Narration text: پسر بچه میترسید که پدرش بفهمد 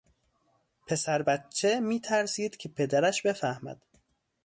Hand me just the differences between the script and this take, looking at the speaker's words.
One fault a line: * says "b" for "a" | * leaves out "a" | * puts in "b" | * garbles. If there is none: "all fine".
all fine